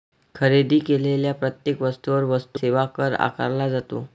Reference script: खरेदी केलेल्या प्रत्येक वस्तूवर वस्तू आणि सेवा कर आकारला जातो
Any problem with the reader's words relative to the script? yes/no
yes